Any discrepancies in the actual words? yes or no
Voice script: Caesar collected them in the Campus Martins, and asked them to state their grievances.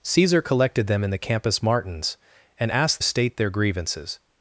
yes